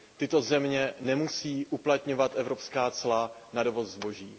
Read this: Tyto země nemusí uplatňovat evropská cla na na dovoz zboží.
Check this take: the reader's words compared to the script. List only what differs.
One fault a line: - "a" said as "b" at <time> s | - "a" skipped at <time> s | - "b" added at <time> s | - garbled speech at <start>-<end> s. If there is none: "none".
- "na" skipped at 3.6 s